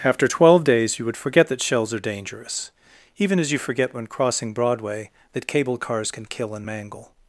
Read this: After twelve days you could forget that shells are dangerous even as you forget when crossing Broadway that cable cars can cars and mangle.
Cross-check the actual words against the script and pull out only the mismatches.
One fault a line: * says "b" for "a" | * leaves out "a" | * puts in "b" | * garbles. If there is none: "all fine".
* says "would" for "could"
* says "kill" for "cars"